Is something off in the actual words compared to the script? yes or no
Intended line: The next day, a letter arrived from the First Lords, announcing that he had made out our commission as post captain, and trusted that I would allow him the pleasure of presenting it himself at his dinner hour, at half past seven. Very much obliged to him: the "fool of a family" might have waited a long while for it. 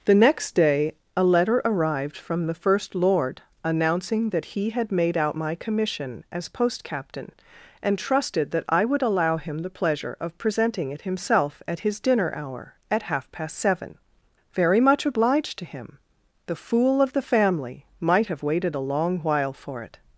yes